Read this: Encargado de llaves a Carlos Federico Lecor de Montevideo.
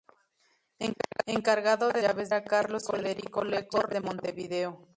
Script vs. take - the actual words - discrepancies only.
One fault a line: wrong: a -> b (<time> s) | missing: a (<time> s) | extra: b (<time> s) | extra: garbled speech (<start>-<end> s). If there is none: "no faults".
no faults